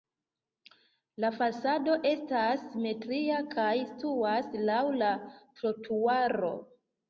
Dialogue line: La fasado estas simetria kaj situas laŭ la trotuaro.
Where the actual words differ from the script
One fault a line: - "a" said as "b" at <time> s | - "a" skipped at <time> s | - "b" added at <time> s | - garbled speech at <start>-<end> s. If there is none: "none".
none